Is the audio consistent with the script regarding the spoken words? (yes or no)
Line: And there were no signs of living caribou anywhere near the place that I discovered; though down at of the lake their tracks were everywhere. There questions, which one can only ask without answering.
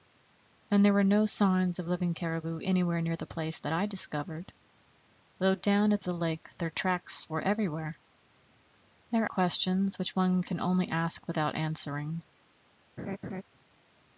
yes